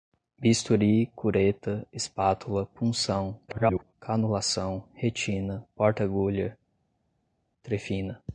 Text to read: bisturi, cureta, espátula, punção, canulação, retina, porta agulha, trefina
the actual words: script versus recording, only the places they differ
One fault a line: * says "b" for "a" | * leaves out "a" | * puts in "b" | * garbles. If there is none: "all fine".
* garbles